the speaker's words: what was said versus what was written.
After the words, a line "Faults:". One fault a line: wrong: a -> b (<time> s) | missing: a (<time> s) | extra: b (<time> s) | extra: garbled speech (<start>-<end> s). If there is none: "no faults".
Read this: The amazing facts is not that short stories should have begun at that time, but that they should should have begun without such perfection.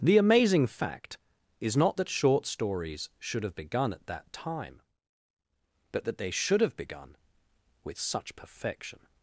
The amazing fact is not that short stories should have begun at that time, but that they should have begun with such perfection.
Faults:
wrong: facts -> fact (0.7 s)
missing: should (6.6 s)
wrong: without -> with (7.8 s)